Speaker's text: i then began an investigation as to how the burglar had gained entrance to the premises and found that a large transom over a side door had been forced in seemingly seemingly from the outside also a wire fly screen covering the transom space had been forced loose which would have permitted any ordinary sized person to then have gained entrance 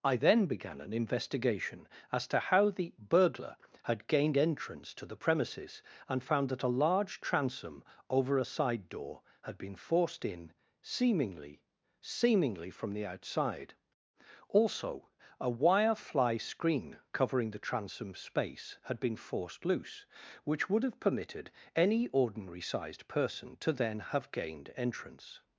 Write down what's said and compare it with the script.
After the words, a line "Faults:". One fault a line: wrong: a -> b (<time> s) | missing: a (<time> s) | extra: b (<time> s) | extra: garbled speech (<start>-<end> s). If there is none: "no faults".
i then began an investigation as to how the burglar had gained entrance to the premises and found that a large transom over a side door had been forced in seemingly seemingly from the outside also a wire fly screen covering the transom space had been forced loose which would have permitted any ordinary sized person to then have gained entrance
Faults:
no faults